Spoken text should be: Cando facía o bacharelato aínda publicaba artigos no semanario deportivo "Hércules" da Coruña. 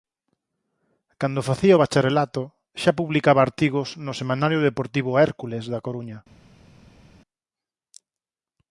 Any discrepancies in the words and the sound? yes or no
yes